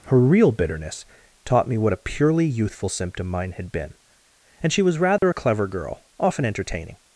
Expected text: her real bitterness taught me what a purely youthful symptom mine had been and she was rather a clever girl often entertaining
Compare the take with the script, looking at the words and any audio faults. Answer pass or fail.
fail